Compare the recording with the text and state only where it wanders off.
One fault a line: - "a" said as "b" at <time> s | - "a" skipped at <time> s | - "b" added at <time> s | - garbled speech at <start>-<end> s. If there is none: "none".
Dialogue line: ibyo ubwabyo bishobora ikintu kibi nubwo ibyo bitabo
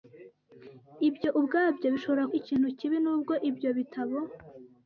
none